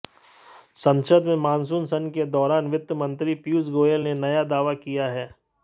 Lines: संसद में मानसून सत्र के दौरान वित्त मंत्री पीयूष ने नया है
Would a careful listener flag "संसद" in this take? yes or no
no